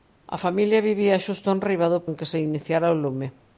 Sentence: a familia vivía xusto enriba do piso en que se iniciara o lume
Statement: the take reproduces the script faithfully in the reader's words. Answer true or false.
false